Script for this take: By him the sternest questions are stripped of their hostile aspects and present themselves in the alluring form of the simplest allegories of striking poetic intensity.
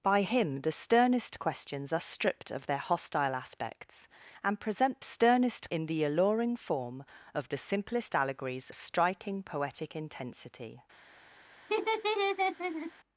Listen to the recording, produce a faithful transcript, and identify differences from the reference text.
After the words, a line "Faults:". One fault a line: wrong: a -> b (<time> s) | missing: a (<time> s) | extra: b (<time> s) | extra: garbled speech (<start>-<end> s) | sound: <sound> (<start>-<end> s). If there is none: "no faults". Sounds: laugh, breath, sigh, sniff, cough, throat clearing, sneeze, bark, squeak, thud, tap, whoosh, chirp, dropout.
By him the sternest questions are stripped of their hostile aspects and present sternest in the alluring form of the simplest allegories striking poetic intensity.
Faults:
wrong: themselves -> sternest (5.0 s)
missing: of (8.7 s)
sound: laugh (11.7-12.9 s)